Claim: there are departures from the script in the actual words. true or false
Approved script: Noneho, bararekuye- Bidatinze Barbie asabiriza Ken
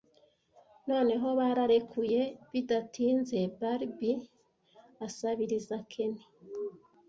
false